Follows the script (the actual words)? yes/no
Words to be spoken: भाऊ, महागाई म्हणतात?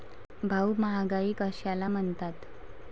no